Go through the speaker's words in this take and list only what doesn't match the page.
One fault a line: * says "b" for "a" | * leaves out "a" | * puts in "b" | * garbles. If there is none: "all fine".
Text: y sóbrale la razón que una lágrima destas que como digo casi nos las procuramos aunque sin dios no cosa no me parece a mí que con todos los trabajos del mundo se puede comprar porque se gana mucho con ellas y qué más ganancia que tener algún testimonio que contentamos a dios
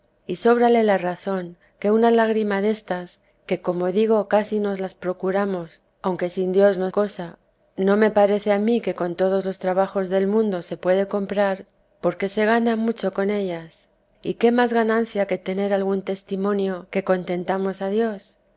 all fine